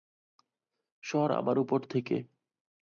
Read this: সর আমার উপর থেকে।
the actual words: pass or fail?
pass